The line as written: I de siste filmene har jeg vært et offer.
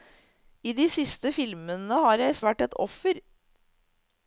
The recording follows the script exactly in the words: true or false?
true